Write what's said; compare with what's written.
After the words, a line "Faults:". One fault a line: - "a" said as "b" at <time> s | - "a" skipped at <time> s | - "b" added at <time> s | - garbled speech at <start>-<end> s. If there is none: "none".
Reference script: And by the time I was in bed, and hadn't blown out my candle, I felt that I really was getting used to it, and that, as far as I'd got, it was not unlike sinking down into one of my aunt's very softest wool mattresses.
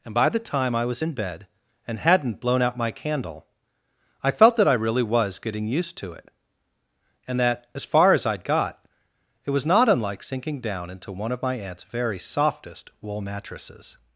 And by the time I was in bed, and hadn't blown out my candle, I felt that I really was getting used to it, and that, as far as I'd got, it was not unlike sinking down into one of my aunt's very softest wool mattresses.
Faults:
none